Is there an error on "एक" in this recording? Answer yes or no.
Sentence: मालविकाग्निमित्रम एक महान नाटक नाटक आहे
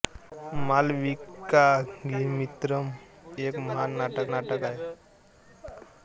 no